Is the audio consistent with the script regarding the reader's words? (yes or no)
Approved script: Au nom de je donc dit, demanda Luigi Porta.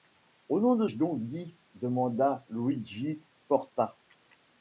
yes